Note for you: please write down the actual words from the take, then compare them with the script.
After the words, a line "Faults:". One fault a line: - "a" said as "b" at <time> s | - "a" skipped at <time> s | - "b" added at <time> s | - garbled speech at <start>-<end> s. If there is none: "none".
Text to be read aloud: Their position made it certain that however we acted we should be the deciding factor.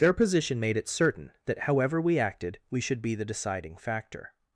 Their position made it certain that however we acted we should be the deciding factor.
Faults:
none